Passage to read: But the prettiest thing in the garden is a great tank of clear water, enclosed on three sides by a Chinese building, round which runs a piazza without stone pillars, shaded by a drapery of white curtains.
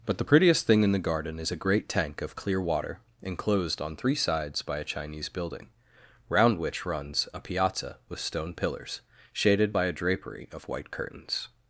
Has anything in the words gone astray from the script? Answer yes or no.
yes